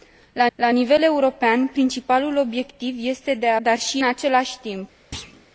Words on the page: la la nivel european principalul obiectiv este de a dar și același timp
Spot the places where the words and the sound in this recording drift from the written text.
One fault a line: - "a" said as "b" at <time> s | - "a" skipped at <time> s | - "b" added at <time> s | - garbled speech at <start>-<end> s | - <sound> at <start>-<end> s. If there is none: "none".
- thud at 5.1-5.5 s